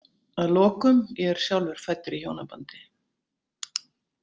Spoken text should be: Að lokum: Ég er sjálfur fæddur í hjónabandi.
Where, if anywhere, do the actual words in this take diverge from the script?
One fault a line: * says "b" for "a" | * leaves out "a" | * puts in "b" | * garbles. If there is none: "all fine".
all fine